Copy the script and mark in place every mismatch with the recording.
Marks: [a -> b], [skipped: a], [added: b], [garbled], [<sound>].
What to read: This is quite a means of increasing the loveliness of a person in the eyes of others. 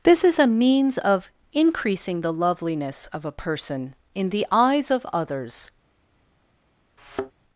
This is [skipped: quite] a means of increasing the loveliness of a person in the eyes of others. [thud]